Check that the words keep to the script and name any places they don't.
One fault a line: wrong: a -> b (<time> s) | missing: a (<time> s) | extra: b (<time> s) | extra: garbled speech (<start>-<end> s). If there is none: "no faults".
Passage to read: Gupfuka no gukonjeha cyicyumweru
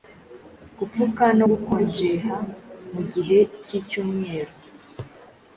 extra: mugihe (2.9 s)